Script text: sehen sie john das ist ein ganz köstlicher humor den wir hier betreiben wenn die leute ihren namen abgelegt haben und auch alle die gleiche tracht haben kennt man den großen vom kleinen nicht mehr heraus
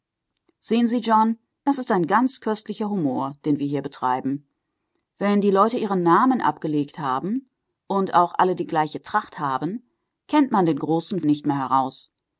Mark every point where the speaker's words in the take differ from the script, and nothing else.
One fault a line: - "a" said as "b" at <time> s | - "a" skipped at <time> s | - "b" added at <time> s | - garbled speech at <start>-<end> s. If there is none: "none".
- "vom kleinen" skipped at 11.2 s